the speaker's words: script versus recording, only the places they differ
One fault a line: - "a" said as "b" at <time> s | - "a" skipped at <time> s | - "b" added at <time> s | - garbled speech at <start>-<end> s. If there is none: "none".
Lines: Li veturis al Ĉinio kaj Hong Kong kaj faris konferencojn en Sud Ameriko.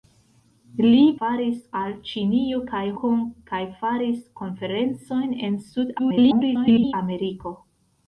- "veturis" said as "faris" at 1.2 s
- "Hong" skipped at 2.8 s
- garbled speech at 6.0-6.9 s